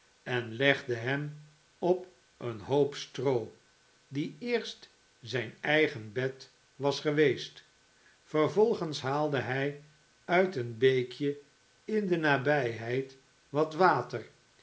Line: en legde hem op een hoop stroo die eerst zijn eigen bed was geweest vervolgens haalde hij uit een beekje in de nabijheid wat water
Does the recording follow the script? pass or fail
pass